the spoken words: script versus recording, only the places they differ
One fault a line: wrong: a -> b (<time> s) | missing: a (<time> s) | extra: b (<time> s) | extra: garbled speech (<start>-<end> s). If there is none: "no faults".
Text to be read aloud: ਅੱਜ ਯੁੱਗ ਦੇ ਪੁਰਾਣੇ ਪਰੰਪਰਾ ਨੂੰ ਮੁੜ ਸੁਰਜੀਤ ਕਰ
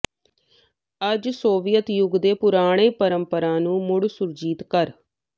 extra: ਸੋਵੀਅਤ (1.3 s)